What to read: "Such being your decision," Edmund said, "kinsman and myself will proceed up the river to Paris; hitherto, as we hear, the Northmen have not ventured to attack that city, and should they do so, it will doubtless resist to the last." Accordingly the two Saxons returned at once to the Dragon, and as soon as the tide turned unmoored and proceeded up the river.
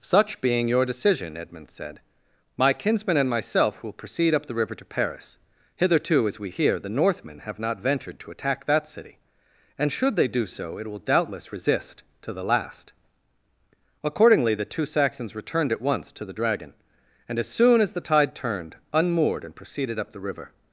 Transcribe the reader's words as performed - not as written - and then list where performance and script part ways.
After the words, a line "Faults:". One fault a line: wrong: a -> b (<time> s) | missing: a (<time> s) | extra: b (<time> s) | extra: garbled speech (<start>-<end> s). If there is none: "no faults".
"Such being your decision," Edmund said, "my kinsman and myself will proceed up the river to Paris; hitherto, as we hear, the Northmen have not ventured to attack that city, and should they do so, it will doubtless resist to the last." Accordingly the two Saxons returned at once to the Dragon, and as soon as the tide turned unmoored and proceeded up the river.
Faults:
extra: my (2.6 s)